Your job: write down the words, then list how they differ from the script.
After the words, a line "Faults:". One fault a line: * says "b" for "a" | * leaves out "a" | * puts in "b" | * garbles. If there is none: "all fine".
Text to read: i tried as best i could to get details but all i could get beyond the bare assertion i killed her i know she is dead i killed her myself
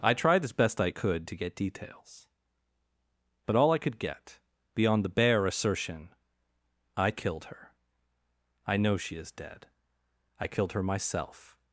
i tried as best i could to get details but all i could get beyond the bare assertion i killed her i know she is dead i killed her myself
Faults:
all fine